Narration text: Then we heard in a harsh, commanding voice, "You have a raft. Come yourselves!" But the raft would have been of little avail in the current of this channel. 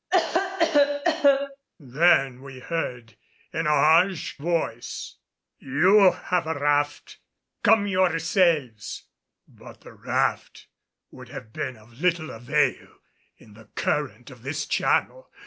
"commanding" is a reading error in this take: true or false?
true